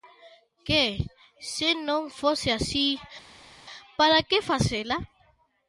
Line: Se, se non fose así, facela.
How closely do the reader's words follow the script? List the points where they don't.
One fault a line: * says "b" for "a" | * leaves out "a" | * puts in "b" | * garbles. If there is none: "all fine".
* says "Que" for "Se"
* puts in "para que"